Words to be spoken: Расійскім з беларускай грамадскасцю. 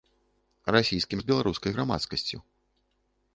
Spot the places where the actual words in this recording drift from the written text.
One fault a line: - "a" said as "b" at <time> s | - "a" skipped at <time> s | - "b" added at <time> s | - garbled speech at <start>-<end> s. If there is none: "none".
none